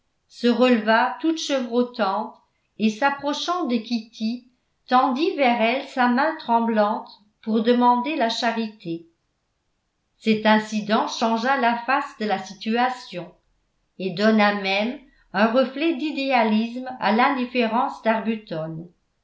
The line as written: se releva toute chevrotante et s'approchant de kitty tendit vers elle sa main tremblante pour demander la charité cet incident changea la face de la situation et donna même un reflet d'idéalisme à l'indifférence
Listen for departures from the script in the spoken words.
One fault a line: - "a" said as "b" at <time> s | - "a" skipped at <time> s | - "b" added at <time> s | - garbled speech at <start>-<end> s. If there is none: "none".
none